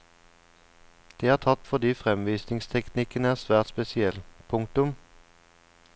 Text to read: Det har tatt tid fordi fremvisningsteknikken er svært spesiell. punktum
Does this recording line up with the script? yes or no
no